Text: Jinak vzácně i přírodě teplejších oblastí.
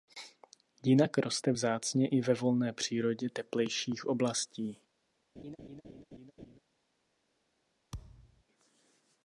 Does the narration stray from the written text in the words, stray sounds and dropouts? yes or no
yes